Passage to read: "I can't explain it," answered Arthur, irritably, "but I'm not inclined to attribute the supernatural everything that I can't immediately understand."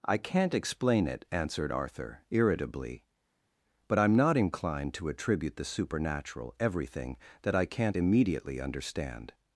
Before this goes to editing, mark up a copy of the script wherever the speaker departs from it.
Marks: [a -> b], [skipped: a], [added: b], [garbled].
"I can't explain it," answered Arthur, irritably, "but I'm not inclined to attribute the supernatural everything that I can't immediately understand."